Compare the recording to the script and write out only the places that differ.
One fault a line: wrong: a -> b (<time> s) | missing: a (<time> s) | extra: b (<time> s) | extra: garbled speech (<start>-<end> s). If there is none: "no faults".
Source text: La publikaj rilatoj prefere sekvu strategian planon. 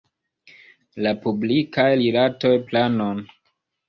missing: prefere sekvu strategian (2.5 s)